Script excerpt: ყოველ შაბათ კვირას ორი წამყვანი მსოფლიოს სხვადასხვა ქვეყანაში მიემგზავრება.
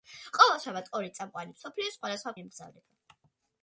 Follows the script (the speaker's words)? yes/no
no